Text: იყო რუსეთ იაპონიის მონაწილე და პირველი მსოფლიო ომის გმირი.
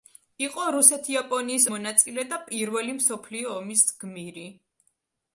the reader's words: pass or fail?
pass